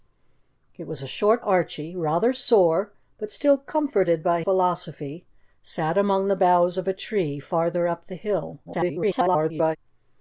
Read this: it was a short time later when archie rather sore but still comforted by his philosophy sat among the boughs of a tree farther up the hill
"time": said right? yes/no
no